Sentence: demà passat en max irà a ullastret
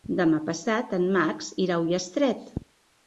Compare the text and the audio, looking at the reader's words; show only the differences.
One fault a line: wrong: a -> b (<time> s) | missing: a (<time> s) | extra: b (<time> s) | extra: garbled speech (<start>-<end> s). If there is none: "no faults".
no faults